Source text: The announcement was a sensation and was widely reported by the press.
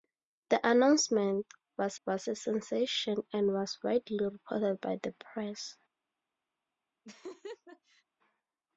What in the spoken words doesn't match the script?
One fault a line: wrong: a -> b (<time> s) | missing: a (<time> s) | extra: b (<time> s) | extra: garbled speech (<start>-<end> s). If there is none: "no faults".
extra: was (2.1 s)